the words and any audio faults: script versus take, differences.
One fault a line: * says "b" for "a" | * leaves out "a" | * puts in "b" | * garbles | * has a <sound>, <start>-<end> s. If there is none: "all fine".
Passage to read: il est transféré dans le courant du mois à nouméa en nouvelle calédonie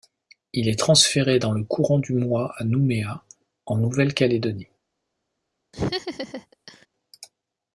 * has a laugh, 5.7-6.9 s